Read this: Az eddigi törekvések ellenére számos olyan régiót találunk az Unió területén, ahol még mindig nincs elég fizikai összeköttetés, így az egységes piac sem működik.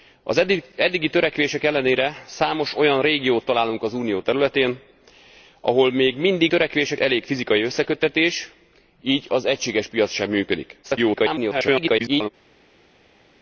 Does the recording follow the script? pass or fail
fail